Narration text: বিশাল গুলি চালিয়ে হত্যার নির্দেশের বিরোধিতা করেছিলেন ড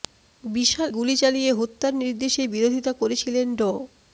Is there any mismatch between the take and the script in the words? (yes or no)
no